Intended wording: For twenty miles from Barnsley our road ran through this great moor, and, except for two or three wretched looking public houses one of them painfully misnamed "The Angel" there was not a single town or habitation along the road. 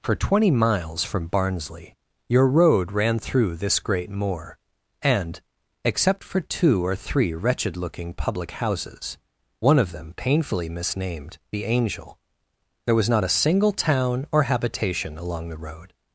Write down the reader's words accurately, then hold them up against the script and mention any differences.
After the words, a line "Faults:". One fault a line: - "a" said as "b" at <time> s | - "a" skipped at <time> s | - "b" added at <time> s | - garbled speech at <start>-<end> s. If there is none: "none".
For twenty miles from Barnsley your road ran through this great moor, and, except for two or three wretched looking public houses one of them painfully misnamed "The Angel" there was not a single town or habitation along the road.
Faults:
- "our" said as "your" at 2.3 s